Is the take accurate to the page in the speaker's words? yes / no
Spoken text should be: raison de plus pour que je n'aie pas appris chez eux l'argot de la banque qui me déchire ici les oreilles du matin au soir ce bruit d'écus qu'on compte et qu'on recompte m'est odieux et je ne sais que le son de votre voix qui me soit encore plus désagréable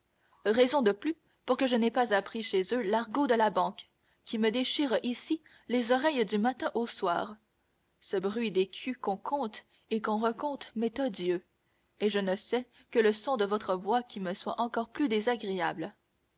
yes